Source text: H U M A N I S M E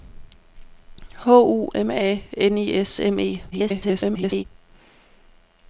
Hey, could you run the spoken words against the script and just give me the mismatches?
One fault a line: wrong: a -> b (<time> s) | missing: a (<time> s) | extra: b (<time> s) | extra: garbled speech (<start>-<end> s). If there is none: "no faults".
extra: garbled speech (3.5-4.4 s)